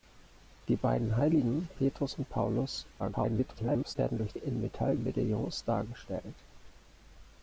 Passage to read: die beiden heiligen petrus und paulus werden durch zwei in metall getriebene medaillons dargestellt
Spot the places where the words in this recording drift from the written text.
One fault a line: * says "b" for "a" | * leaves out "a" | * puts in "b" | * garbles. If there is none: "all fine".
* garbles
* leaves out "zwei"
* leaves out "getriebene"